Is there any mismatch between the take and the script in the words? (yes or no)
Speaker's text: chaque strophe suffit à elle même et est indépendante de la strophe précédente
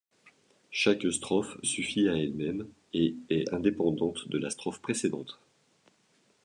no